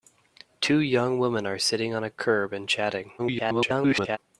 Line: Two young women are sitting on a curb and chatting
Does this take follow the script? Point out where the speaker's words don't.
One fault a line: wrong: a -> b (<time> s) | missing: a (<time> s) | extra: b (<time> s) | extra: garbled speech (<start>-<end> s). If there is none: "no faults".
extra: garbled speech (3.2-4.2 s)